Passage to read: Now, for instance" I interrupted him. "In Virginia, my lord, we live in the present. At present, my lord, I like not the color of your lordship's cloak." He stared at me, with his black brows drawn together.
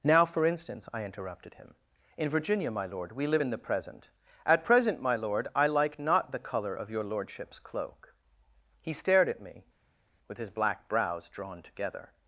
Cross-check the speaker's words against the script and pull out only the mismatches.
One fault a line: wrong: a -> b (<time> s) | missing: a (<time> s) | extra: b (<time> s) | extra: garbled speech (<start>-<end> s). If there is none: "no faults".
no faults